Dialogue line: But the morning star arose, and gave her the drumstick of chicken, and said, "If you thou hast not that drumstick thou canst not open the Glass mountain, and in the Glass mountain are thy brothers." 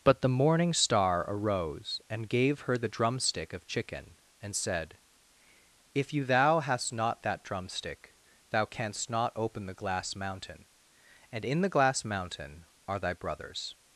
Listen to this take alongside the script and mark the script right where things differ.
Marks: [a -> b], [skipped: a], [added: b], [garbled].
But the morning star arose, and gave her the drumstick of chicken, and said, "If you thou hast not that drumstick thou canst not open the Glass mountain, and in the Glass mountain are thy brothers."